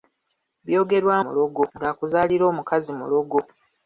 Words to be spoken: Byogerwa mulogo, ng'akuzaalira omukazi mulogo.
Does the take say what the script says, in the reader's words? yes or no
yes